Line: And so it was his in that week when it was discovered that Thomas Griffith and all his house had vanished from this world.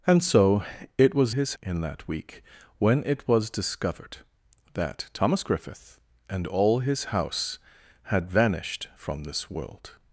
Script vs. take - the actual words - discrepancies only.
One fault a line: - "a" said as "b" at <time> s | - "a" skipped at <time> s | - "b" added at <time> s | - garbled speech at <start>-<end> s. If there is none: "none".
none